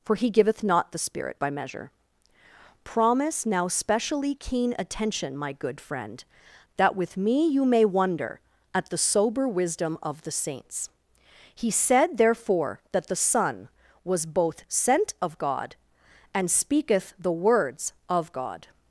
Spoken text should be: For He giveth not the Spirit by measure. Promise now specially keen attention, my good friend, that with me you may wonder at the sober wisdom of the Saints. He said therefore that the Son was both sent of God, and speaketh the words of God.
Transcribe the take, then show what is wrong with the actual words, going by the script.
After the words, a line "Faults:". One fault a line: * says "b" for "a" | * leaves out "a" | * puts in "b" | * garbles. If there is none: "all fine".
For He giveth not the Spirit by measure. Promise now specially keen attention, my good friend, that with me you may wonder at the sober wisdom of the Saints. He said therefore that the Son was both sent of God, and speaketh the words of God.
Faults:
all fine